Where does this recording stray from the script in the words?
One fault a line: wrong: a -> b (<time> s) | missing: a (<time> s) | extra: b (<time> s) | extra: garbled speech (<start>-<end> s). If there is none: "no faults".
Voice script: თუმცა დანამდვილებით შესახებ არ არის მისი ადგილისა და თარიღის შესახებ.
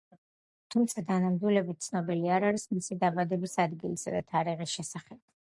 wrong: შესახებ -> ცნობილი (1.9 s)
extra: დაბადების (3.0 s)